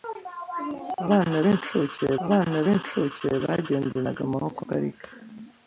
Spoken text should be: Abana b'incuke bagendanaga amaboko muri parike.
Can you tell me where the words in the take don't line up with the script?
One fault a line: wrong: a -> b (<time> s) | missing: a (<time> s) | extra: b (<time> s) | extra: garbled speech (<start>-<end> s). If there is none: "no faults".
extra: abana b'incuke (2.2 s)
missing: muri (4.6 s)